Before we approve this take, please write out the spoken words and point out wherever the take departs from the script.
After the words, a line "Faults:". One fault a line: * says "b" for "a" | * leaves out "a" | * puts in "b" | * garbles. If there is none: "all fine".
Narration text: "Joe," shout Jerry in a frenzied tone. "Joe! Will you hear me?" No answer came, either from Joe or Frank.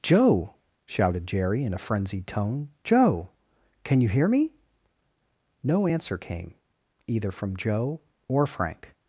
"Joe," shouted Jerry in a frenzied tone. "Joe! Can you hear me?" No answer came, either from Joe or Frank.
Faults:
* says "shouted" for "shout"
* says "Can" for "Will"